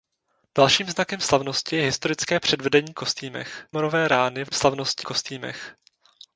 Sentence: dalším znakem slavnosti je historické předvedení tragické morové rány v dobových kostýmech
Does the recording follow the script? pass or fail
fail